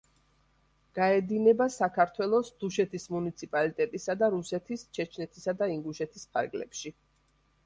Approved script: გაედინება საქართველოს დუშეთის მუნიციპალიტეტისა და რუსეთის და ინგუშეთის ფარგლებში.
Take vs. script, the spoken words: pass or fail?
fail